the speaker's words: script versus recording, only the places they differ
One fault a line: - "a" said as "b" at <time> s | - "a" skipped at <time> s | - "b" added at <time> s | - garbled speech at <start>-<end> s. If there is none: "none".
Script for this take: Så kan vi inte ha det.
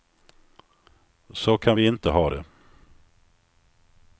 none